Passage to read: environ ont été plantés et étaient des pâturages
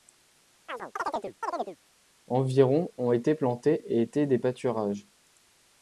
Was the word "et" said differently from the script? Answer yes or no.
no